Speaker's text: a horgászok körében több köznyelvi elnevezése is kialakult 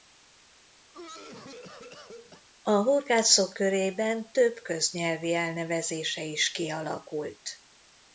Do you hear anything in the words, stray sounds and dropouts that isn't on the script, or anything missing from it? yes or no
yes